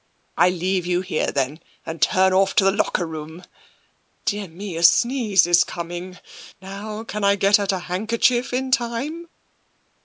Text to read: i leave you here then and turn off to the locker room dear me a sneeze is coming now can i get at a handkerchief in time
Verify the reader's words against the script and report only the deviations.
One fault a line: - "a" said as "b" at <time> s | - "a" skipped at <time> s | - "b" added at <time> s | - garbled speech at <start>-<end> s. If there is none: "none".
none